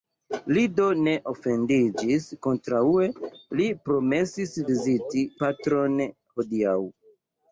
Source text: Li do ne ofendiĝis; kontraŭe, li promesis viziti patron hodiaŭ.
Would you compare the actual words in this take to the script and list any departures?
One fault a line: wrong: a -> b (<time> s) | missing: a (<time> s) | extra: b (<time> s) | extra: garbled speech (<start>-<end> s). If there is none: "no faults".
no faults